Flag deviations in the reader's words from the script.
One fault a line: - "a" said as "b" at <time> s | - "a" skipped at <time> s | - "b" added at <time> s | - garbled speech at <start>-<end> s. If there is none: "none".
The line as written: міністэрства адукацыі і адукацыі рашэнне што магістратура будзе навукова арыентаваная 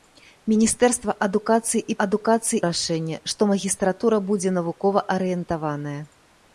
none